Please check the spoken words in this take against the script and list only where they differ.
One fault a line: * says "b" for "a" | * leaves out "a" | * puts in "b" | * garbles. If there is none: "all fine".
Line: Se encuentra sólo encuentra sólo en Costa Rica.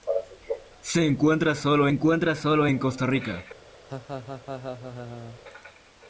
all fine